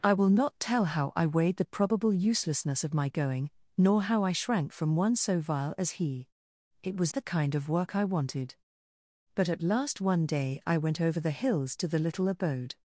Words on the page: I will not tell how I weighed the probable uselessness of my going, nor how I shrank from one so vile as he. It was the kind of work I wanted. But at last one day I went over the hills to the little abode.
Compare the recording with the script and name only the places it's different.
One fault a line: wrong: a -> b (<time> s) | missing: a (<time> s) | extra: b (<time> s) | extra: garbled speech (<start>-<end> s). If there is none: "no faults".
no faults